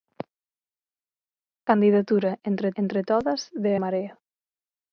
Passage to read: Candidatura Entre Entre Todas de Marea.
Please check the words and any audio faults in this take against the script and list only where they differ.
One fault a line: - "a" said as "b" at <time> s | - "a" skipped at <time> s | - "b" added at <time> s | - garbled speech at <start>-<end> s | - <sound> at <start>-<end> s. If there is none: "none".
none